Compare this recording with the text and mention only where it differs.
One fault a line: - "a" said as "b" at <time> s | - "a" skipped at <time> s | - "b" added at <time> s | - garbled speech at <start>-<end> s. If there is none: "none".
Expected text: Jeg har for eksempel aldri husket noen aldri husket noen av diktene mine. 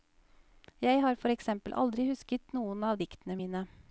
- "aldri husket noen" skipped at 2.9 s